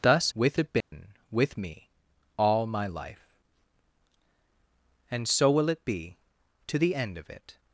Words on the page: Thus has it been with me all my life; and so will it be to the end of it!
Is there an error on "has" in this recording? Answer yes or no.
yes